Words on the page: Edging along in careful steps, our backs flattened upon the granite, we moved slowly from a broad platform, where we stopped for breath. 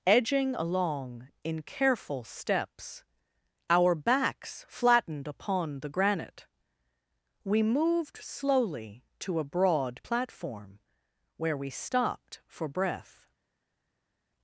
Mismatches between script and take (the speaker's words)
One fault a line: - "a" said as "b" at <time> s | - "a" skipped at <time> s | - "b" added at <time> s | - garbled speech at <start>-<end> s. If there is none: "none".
- "from" said as "to" at 9.2 s